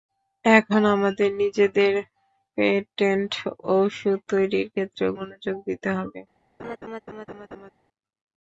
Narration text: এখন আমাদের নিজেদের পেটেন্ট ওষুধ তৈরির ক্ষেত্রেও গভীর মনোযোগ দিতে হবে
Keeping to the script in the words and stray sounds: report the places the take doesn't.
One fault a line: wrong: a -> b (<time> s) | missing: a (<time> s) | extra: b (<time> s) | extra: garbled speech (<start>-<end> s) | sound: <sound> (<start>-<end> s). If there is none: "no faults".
missing: গভীর (5.1 s)
sound: laugh (6.6-7.7 s)